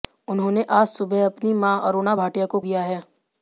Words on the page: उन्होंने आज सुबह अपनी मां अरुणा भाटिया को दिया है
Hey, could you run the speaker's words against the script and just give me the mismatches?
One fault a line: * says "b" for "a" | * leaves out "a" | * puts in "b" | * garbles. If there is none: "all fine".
all fine